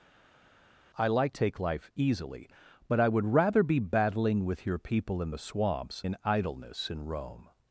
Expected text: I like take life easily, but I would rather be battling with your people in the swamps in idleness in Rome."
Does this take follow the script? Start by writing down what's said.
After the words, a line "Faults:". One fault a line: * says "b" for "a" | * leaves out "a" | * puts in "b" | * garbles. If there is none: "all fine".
I like take life easily, but I would rather be battling with your people in the swamps in idleness in Rome."
Faults:
all fine